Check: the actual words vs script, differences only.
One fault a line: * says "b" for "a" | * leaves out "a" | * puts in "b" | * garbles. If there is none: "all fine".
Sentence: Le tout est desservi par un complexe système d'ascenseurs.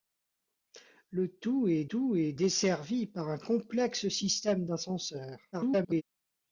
* puts in "tout est"
* garbles